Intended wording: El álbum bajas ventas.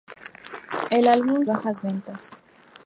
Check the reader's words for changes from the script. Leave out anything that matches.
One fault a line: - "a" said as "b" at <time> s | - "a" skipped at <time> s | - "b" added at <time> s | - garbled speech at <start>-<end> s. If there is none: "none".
none